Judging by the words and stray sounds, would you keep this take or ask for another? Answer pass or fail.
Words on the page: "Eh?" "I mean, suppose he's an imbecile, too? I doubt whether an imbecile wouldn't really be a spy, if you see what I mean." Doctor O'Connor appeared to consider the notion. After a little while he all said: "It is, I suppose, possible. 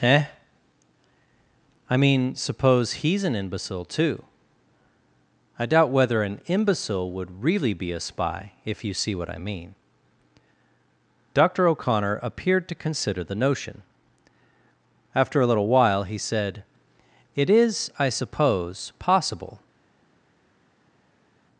fail